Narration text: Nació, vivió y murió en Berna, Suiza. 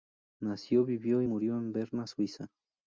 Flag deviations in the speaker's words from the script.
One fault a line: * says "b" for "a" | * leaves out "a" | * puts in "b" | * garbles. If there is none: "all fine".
all fine